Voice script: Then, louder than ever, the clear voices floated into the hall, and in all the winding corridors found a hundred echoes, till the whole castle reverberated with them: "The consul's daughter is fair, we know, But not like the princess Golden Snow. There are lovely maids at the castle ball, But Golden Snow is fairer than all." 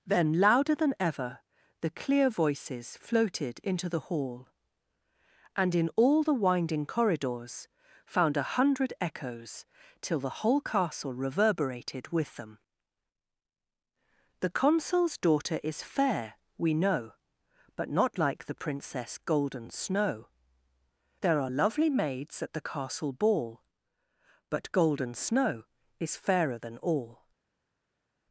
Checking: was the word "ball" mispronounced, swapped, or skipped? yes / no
no